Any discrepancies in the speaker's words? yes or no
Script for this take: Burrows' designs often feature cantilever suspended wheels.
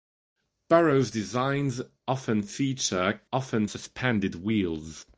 yes